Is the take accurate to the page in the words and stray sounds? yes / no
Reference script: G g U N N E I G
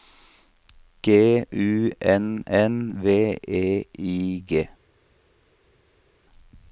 no